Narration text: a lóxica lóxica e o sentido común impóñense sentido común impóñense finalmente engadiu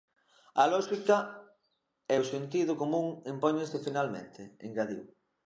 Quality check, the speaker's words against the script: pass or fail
fail